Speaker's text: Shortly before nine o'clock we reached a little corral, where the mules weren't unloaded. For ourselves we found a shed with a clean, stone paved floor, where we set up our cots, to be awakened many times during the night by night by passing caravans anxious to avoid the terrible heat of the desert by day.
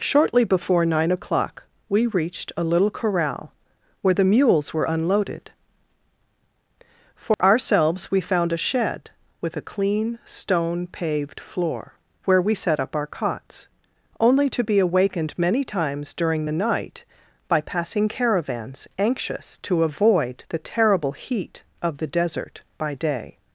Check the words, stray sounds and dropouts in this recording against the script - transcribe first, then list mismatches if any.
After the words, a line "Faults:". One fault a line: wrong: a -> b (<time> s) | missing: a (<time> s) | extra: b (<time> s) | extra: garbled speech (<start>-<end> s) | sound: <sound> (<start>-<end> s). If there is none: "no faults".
Shortly before nine o'clock we reached a little corral, where the mules were unloaded. For ourselves we found a shed with a clean, stone paved floor, where we set up our cots, only to be awakened many times during the night by passing caravans anxious to avoid the terrible heat of the desert by day.
Faults:
wrong: weren't -> were (4.7 s)
sound: dropout (7.3-7.4 s)
extra: only (14.2 s)
missing: night by (17.6 s)